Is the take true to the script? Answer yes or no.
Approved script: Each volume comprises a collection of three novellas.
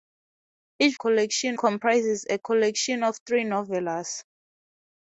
no